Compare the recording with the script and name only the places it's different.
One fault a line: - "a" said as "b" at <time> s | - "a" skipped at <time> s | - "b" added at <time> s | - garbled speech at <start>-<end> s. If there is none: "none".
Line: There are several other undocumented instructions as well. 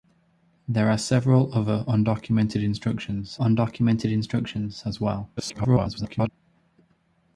- "undocumented instructions" added at 3.4 s
- garbled speech at 5.4-6.3 s